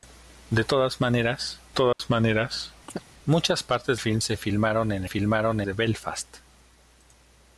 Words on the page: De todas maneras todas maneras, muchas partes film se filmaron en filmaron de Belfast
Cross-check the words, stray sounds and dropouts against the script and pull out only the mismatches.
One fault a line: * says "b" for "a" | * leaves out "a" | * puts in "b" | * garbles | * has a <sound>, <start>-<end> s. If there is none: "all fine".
* has a dropout, 1.9-2.0 s
* has a chirp, 2.9-3.0 s